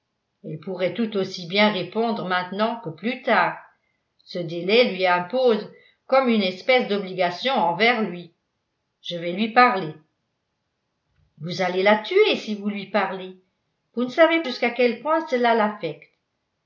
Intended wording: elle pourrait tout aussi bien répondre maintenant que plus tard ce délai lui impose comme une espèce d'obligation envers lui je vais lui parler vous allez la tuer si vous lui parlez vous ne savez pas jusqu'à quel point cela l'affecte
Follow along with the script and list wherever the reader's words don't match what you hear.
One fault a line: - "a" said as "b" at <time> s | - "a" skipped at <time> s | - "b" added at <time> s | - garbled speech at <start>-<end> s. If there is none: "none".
- "pas" skipped at 14.4 s